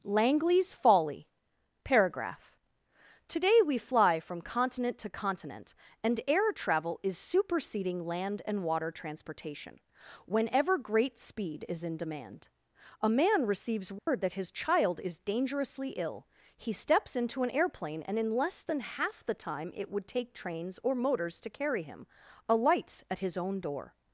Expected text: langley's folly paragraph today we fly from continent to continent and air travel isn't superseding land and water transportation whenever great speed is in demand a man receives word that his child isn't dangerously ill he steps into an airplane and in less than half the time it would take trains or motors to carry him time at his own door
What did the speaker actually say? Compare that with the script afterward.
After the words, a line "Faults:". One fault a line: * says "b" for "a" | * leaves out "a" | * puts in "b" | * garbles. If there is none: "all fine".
langley's folly paragraph today we fly from continent to continent and air travel is superseding land and water transportation whenever great speed is in demand a man receives word that his child is dangerously ill he steps into an airplane and in less than half the time it would take trains or motors to carry him alights at his own door
Faults:
* says "is" for "isn't"
* says "is" for "isn't"
* says "alights" for "time"